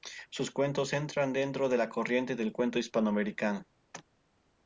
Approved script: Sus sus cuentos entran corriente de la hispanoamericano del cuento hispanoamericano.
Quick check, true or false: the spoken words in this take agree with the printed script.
false